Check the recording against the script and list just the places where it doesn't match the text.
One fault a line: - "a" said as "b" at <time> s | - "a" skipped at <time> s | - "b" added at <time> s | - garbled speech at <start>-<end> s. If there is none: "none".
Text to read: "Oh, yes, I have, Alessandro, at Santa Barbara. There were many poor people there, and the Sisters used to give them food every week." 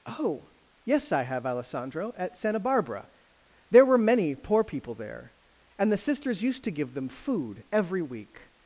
none